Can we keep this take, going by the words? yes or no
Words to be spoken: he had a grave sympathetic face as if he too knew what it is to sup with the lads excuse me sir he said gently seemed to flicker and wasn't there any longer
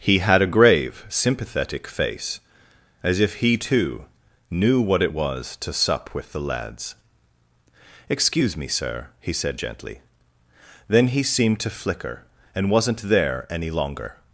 no